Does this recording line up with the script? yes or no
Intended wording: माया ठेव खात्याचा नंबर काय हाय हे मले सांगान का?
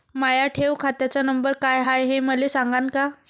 yes